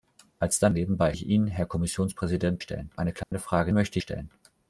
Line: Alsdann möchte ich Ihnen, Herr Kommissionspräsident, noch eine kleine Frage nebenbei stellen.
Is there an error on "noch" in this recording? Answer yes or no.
yes